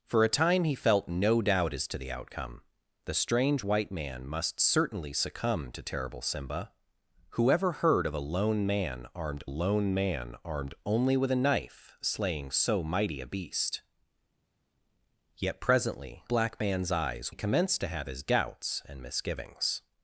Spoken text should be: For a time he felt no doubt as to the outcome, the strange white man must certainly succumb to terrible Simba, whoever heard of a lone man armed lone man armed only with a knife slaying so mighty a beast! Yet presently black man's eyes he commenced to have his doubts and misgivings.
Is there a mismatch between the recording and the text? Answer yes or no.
no